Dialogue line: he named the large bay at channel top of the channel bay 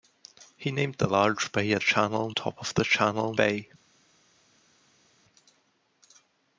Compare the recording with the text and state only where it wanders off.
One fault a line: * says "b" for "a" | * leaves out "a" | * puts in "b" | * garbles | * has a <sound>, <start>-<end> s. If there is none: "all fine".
all fine